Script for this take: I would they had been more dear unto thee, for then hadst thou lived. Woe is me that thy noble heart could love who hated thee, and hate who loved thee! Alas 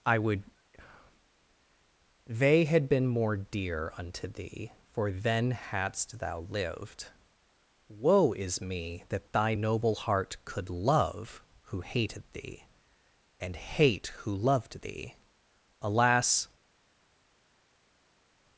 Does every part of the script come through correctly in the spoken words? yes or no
yes